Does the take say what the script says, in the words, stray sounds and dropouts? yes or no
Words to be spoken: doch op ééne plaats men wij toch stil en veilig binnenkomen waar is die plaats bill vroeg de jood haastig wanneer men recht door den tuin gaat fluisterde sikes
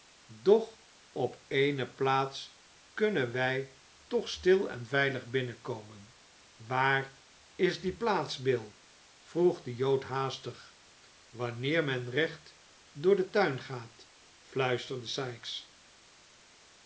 no